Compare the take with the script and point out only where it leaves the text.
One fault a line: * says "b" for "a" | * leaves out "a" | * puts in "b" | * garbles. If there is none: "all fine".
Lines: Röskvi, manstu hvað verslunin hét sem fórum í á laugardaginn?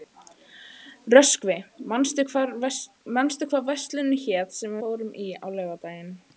all fine